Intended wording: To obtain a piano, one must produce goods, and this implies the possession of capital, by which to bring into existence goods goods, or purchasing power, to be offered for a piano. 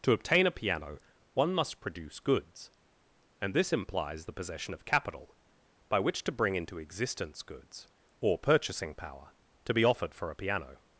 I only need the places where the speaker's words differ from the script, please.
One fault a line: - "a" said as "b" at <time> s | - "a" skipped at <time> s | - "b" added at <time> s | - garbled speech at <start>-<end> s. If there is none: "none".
- "goods" skipped at 7.9 s